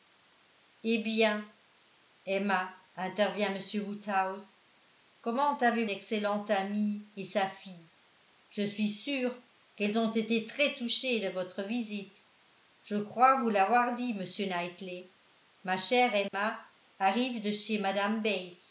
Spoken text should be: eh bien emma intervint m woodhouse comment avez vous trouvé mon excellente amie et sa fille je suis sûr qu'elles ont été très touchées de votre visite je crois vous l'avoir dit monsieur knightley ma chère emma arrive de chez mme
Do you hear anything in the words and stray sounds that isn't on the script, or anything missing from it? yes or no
yes